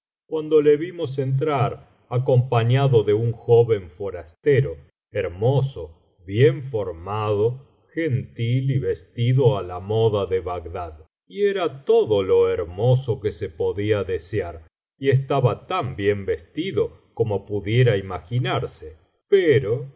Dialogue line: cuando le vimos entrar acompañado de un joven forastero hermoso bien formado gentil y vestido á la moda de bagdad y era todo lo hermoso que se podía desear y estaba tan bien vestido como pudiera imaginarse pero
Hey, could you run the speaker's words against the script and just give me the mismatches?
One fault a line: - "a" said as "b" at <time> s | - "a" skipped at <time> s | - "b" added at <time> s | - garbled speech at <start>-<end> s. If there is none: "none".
none